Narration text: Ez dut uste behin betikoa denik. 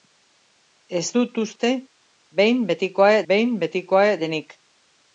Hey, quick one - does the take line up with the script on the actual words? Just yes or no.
no